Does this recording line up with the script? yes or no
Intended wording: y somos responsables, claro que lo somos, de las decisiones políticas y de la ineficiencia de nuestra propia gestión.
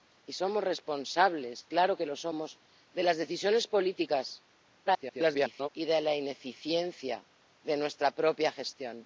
no